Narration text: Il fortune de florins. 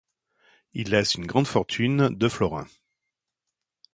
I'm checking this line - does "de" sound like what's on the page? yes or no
yes